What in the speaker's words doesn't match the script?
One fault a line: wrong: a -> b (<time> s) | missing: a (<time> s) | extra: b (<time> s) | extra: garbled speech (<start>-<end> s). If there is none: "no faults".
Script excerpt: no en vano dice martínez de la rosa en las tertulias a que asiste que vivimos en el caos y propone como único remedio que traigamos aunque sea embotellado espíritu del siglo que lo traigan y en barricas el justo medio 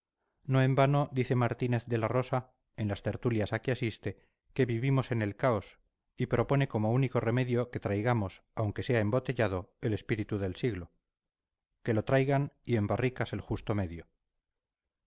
extra: el (9.8 s)